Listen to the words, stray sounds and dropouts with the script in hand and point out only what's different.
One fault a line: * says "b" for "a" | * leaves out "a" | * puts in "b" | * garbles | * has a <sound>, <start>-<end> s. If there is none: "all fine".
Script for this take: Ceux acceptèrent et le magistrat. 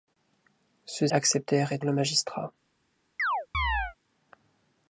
* has a chirp, 3.2-4.0 s